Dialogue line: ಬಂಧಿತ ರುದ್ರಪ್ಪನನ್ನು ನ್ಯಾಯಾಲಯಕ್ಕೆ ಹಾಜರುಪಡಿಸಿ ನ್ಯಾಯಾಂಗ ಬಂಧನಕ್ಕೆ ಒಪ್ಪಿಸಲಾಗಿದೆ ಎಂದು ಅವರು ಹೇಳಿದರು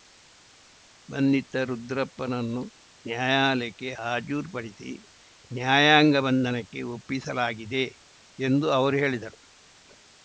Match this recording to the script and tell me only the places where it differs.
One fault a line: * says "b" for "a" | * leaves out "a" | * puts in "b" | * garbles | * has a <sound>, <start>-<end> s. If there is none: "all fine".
all fine